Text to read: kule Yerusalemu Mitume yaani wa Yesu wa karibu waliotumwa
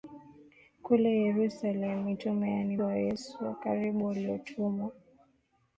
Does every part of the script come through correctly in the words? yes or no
yes